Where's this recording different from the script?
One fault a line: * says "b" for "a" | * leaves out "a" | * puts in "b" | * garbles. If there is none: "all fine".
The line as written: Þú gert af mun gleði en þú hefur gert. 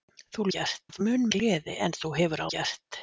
all fine